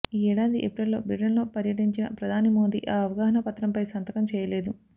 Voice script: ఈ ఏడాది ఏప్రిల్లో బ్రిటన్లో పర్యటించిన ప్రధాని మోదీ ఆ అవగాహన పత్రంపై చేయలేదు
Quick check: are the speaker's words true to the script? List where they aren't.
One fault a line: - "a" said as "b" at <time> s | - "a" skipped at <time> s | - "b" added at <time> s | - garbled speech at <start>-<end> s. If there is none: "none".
- "సంతకం" added at 3.9 s